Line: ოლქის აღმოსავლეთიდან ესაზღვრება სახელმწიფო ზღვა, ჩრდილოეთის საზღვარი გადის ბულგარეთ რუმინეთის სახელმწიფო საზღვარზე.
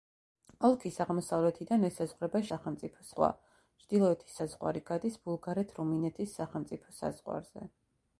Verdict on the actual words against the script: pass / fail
pass